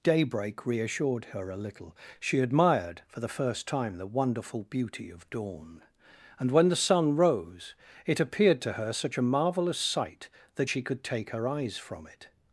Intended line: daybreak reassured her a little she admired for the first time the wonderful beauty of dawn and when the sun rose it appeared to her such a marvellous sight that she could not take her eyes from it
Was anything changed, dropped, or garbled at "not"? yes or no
yes